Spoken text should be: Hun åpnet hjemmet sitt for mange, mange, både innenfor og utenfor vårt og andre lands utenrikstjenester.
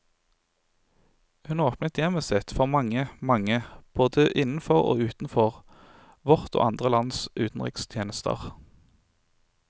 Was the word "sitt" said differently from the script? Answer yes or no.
no